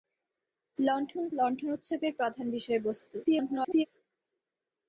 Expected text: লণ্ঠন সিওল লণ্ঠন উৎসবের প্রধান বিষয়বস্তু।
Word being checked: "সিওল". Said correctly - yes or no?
no